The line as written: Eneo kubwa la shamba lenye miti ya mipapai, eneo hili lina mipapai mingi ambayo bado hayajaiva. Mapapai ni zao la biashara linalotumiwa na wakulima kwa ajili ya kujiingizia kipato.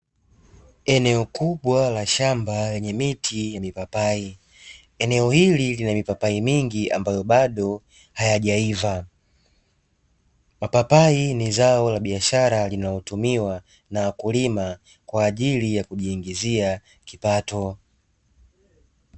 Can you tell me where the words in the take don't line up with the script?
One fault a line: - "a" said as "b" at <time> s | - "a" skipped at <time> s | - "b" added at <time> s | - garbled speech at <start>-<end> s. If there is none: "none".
none